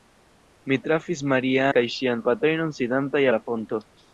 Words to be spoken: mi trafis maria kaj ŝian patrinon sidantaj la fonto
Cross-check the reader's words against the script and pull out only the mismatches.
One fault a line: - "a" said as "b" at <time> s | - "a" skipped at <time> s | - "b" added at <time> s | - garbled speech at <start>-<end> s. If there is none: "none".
none